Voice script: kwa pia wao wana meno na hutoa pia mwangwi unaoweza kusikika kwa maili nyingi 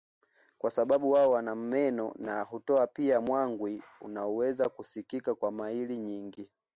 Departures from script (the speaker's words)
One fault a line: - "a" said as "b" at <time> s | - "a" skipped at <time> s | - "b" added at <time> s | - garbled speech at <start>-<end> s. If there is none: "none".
- "pia" said as "sababu" at 0.7 s